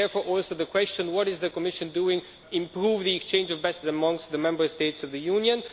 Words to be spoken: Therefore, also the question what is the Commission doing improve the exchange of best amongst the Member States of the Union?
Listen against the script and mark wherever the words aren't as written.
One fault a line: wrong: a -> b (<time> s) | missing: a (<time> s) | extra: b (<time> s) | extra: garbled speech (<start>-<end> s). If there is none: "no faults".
no faults